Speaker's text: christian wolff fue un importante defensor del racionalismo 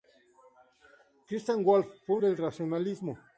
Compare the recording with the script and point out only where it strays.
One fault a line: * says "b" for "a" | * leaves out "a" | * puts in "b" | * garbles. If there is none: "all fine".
* leaves out "un importante defensor"